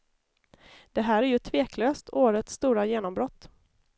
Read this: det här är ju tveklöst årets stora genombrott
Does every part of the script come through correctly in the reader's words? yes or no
yes